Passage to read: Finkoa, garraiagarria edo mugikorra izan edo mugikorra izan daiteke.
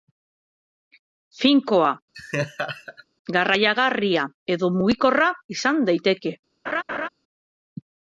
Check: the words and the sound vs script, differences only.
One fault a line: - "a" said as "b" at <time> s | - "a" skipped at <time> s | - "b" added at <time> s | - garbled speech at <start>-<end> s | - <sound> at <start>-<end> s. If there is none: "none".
- laugh at 2.1-3.0 s
- "edo mugikorra izan" skipped at 5.8 s
- laugh at 6.7-7.1 s